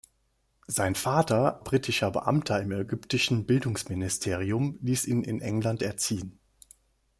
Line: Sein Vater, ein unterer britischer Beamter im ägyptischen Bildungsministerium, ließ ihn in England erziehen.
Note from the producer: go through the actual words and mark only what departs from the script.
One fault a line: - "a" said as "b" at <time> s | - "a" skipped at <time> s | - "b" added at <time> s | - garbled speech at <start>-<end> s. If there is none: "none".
- "ein unterer" skipped at 1.6 s